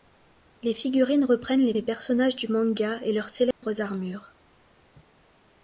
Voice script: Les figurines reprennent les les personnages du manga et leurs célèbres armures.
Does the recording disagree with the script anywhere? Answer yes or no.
no